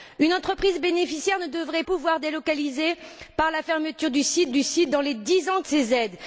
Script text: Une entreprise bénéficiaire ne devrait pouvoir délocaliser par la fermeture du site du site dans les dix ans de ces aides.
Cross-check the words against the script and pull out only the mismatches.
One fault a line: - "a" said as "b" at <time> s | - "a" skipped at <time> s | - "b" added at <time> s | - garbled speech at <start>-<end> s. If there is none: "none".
none